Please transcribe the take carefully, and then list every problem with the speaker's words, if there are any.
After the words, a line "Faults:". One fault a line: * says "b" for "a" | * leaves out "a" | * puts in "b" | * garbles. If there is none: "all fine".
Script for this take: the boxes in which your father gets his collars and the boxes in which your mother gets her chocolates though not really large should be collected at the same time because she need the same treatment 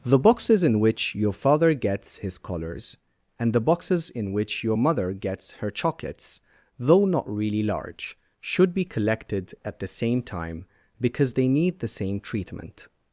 the boxes in which your father gets his collars and the boxes in which your mother gets her chocolates though not really large should be collected at the same time because they need the same treatment
Faults:
* says "they" for "she"